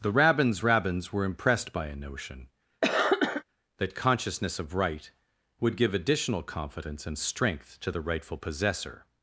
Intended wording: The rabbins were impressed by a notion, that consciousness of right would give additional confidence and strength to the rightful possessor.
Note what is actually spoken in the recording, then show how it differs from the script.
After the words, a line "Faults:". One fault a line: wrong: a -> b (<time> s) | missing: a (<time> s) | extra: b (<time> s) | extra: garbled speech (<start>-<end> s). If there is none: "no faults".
The rabbins rabbins were impressed by a notion, that consciousness of right would give additional confidence and strength to the rightful possessor.
Faults:
extra: rabbins (0.6 s)